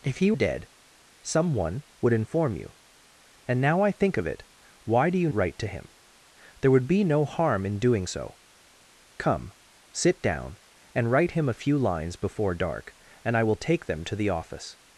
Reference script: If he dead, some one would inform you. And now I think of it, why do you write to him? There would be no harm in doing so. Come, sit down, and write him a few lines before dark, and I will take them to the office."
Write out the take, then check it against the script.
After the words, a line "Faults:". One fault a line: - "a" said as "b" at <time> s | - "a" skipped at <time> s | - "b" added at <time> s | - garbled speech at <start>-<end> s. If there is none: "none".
If he dead, some one would inform you. And now I think of it, why do you write to him? There would be no harm in doing so. Come, sit down, and write him a few lines before dark, and I will take them to the office."
Faults:
none